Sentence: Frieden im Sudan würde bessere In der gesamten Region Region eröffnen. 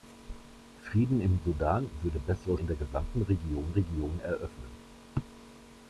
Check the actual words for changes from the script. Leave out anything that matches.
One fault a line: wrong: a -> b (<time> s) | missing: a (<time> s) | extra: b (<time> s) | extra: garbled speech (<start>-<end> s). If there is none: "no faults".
no faults